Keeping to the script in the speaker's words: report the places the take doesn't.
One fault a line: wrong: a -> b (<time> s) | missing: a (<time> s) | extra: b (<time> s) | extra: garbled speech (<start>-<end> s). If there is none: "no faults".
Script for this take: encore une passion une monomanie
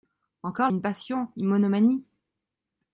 no faults